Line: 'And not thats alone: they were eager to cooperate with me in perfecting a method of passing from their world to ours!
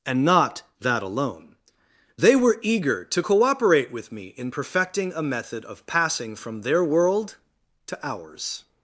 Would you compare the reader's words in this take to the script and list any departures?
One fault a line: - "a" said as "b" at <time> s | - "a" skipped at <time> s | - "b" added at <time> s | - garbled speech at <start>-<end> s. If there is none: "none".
- "thats" said as "that" at 0.8 s